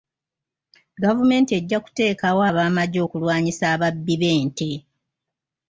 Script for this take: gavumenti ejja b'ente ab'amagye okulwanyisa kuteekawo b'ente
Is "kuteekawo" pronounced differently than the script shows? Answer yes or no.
yes